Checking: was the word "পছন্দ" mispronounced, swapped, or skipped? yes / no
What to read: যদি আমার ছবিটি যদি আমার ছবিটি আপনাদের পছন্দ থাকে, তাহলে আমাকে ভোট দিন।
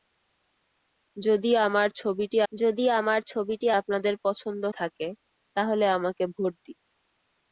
no